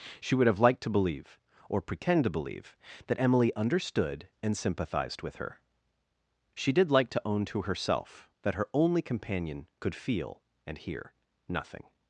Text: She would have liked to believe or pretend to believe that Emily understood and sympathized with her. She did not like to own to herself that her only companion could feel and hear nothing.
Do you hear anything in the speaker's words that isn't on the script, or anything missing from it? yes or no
yes